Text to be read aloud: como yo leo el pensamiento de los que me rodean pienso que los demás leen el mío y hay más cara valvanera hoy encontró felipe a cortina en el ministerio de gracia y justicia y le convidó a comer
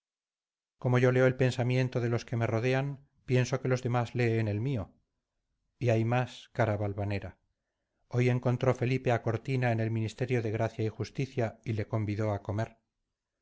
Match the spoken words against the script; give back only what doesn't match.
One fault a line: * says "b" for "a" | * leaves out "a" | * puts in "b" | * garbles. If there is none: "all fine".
all fine